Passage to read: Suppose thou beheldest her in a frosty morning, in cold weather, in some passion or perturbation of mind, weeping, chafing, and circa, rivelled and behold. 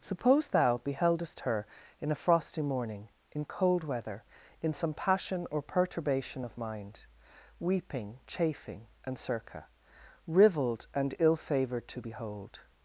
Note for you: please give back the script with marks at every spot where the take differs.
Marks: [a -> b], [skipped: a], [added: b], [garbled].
Suppose thou beheldest her in a frosty morning, in cold weather, in some passion or perturbation of mind, weeping, chafing, and circa, rivelled and [added: ill favoured to] behold.